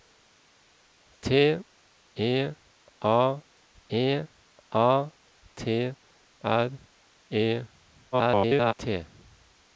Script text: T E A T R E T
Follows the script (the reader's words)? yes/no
no